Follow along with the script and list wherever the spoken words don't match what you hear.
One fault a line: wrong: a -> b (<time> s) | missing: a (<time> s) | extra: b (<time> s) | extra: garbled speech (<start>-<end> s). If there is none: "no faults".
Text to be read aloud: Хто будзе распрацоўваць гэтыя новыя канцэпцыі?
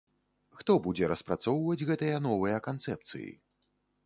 no faults